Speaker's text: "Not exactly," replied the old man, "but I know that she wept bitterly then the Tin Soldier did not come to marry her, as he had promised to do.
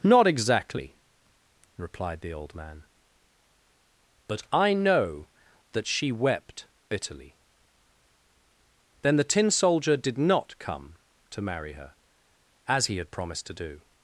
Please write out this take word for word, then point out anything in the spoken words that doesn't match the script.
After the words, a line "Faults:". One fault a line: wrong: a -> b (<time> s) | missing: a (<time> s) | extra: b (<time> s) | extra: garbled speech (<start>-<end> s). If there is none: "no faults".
"Not exactly," replied the old man, "but I know that she wept bitterly then the Tin Soldier did not come to marry her, as he had promised to do.
Faults:
no faults